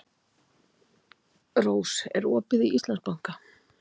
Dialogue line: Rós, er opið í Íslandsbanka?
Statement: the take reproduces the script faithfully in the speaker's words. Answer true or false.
true